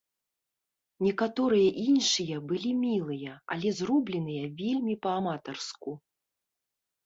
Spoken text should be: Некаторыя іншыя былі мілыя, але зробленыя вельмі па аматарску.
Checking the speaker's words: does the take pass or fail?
pass